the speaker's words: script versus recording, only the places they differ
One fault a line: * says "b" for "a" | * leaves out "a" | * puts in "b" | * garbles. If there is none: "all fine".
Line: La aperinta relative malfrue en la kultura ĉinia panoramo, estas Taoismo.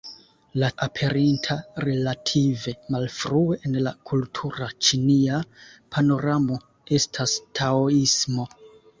all fine